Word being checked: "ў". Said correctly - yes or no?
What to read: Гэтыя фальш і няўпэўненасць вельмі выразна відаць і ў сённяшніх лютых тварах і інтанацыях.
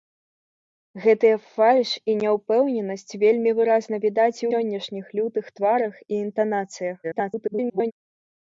no